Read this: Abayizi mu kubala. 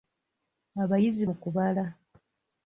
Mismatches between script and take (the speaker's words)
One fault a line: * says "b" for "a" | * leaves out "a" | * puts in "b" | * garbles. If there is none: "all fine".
all fine